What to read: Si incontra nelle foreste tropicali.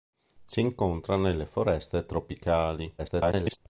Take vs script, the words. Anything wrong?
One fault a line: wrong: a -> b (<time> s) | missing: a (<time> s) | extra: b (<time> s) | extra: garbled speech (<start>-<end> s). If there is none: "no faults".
extra: garbled speech (3.0-3.6 s)